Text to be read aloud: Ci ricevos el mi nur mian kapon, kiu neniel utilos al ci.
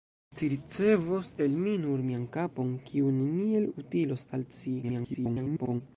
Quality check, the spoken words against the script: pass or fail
fail